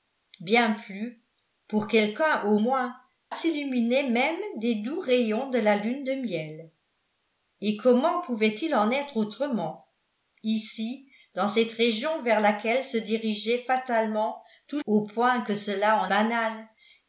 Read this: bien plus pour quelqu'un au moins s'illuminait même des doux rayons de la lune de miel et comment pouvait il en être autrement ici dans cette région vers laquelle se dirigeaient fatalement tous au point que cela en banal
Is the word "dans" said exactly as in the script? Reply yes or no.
yes